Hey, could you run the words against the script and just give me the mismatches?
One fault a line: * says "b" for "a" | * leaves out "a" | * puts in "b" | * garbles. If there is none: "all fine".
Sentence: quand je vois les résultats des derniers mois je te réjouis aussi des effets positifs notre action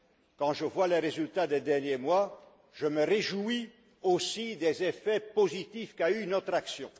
* says "me" for "te"
* puts in "qu'a eus"